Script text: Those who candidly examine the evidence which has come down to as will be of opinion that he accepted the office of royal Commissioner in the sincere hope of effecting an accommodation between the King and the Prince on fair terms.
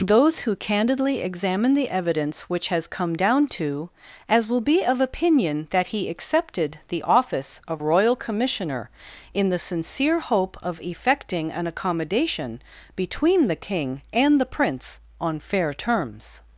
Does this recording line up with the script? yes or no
yes